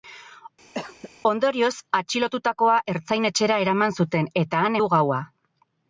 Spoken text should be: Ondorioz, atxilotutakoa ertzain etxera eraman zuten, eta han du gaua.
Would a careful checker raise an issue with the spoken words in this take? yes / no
no